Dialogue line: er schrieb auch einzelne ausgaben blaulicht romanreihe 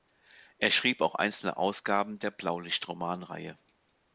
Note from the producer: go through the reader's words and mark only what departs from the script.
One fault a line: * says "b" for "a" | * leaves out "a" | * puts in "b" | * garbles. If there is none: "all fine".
* puts in "der"